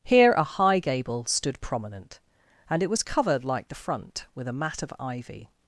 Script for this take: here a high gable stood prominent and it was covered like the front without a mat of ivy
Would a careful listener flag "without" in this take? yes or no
yes